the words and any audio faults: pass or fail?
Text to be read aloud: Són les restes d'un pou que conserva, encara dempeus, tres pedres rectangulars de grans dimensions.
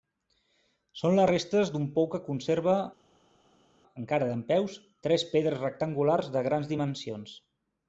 pass